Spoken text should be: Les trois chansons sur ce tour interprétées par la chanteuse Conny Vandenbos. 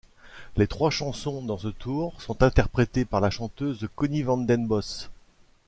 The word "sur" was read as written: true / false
false